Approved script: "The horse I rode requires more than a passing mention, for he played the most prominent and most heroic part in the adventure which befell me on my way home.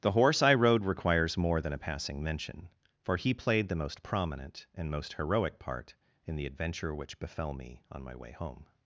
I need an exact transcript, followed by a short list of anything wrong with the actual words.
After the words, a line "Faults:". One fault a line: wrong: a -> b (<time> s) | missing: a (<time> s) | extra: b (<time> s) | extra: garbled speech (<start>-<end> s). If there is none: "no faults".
"The horse I rode requires more than a passing mention, for he played the most prominent and most heroic part in the adventure which befell me on my way home.
Faults:
no faults